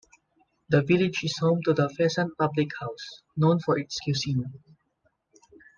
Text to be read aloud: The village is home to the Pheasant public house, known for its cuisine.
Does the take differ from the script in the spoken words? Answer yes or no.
no